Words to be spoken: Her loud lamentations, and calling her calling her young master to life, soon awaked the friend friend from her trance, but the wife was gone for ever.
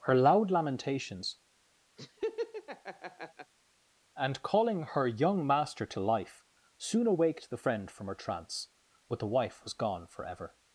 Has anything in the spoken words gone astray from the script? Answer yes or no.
yes